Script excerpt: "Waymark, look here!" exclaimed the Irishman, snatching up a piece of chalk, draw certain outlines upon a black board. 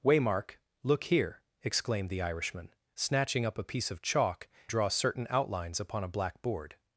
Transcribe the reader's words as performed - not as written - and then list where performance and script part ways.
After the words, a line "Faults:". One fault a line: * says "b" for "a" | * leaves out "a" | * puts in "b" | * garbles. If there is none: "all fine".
"Waymark, look here!" exclaimed the Irishman, snatching up a piece of chalk, draw certain outlines upon a black board.
Faults:
all fine